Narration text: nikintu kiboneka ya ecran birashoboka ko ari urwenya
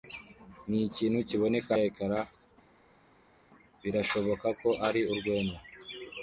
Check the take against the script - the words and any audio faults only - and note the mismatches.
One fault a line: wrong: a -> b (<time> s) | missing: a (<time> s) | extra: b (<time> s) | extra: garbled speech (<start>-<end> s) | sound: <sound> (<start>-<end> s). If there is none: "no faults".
no faults